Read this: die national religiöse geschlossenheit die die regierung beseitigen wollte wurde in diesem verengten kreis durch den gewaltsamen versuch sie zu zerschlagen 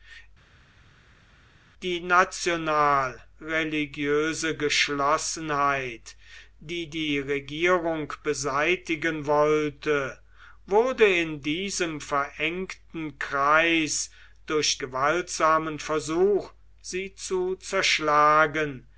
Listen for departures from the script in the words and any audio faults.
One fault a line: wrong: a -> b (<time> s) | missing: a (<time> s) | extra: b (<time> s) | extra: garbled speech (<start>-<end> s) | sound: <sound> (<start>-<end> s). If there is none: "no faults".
missing: den (14.8 s)